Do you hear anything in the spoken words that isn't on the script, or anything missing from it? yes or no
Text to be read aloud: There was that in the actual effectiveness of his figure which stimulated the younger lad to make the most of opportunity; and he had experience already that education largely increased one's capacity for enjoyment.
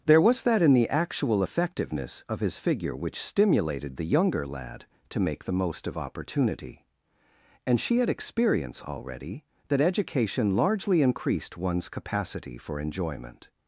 yes